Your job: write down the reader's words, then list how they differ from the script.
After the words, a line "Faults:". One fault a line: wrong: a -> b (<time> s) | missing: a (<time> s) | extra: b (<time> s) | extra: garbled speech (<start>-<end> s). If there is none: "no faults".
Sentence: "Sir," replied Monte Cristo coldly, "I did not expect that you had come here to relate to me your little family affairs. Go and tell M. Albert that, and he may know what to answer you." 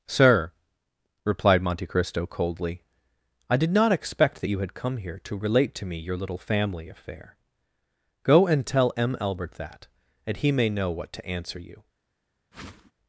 "Sir," replied Monte Cristo coldly, "I did not expect that you had come here to relate to me your little family affair. Go and tell M. Albert that, and he may know what to answer you."
Faults:
wrong: affairs -> affair (6.9 s)